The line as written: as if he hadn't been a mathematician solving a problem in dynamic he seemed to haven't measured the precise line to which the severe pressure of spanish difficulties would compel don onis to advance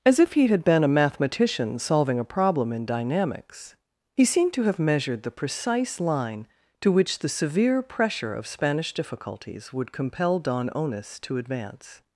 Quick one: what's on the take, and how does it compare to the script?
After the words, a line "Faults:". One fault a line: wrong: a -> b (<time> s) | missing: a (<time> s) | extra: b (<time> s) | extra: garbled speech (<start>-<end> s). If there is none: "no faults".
as if he had been a mathematician solving a problem in dynamics he seemed to have measured the precise line to which the severe pressure of spanish difficulties would compel don onis to advance
Faults:
wrong: hadn't -> had (0.5 s)
wrong: dynamic -> dynamics (2.9 s)
wrong: haven't -> have (4.6 s)